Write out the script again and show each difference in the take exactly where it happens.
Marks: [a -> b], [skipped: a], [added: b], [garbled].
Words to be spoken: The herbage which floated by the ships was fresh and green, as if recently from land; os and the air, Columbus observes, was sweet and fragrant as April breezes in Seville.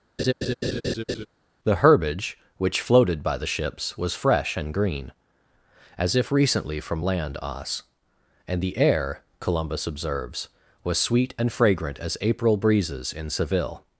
The herbage which floated by the ships was fresh and green, as if recently from land; os and the air, Columbus observes, was sweet and fragrant as April breezes in Seville.